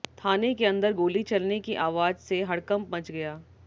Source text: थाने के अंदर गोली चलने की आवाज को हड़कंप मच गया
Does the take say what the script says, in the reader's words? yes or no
no